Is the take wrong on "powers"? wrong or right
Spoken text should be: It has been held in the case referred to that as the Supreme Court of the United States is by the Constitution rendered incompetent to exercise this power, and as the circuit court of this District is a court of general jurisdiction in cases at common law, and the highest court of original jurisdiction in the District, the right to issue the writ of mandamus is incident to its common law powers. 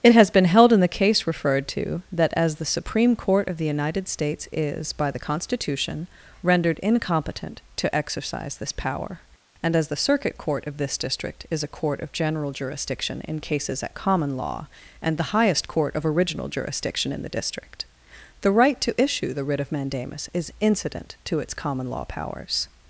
right